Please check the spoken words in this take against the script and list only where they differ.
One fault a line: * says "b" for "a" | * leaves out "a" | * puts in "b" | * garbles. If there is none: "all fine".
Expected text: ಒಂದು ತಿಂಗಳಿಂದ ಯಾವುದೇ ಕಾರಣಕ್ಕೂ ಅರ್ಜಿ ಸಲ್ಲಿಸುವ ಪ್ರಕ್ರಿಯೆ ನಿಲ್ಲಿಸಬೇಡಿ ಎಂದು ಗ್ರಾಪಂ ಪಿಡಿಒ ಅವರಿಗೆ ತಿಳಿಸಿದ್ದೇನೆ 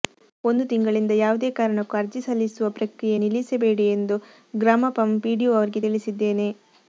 all fine